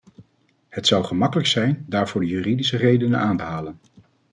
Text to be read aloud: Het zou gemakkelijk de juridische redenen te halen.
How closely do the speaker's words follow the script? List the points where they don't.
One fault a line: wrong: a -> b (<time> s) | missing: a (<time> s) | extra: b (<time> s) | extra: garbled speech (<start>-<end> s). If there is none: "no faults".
extra: zijn daarvoor (1.5 s)
extra: aan (3.2 s)